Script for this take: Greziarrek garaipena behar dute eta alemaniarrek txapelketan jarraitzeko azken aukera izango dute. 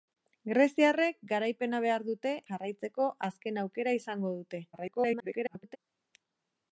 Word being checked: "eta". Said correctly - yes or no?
no